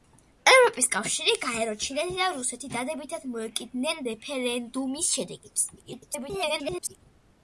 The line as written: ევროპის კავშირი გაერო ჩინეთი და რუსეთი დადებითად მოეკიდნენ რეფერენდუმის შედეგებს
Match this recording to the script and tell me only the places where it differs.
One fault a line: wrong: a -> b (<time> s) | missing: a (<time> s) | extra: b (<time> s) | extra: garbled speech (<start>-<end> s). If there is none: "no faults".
extra: garbled speech (5.8-7.0 s)